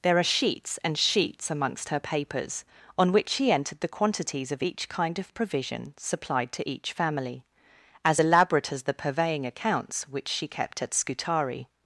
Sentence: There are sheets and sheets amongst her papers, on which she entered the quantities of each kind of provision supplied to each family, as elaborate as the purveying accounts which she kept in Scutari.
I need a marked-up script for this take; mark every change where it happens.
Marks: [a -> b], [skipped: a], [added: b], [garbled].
There are sheets and sheets amongst her papers, on which she entered the quantities of each kind of provision supplied to each family, as elaborate as the purveying accounts which she kept [in -> at] Scutari.